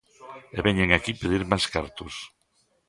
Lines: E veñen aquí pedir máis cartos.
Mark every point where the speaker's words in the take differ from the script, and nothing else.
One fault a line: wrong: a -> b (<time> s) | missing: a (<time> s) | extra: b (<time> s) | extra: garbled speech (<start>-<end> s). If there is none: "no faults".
no faults